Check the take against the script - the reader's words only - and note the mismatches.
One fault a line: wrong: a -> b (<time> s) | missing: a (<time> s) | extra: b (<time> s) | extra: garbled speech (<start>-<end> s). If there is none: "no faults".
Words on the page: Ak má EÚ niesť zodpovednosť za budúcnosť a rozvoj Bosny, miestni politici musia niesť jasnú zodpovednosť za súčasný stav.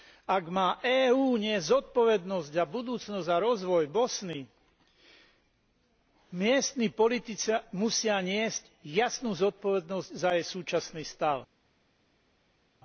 extra: jej (10.3 s)